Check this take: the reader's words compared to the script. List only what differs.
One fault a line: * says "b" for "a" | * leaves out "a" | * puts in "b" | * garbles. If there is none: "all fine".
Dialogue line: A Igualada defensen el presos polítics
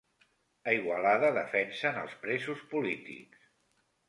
* says "els" for "el"